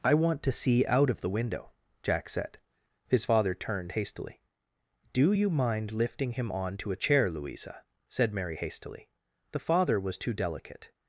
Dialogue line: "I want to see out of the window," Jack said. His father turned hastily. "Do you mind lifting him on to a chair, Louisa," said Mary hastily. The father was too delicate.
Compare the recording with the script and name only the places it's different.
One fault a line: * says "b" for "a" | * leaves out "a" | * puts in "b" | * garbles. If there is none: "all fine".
all fine